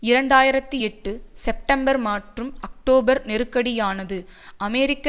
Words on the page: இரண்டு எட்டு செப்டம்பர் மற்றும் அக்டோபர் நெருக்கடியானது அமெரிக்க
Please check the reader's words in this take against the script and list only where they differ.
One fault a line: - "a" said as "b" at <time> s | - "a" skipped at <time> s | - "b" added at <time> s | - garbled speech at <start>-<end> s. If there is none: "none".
- "ஆயிரத்தி" added at 0.3 s